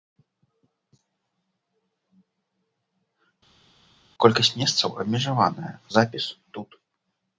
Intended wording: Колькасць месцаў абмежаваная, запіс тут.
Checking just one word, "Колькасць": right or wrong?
right